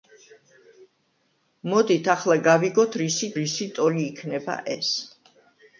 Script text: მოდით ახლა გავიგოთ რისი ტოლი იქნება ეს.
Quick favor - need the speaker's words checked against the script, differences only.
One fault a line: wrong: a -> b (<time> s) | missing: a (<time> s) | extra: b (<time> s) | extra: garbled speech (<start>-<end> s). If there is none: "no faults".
extra: რისი (3.4 s)